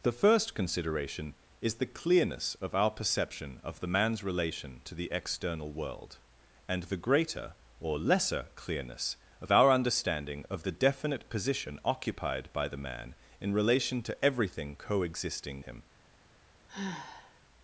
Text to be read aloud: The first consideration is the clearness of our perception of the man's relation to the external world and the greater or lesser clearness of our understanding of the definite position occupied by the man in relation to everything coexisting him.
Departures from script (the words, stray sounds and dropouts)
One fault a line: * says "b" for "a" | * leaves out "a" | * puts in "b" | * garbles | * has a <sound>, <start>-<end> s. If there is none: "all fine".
* has a sigh, 16.7-17.4 s